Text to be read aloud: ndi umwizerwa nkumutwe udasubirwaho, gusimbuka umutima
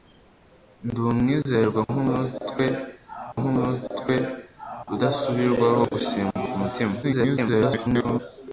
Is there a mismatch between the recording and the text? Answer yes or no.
yes